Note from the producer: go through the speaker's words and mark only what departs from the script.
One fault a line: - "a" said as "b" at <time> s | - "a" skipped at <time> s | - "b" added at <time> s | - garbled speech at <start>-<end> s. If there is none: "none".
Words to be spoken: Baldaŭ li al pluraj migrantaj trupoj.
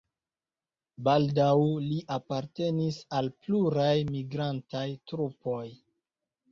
- "apartenis" added at 2.2 s